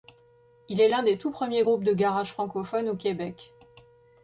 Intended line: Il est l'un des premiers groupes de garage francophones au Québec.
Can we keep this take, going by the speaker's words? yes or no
no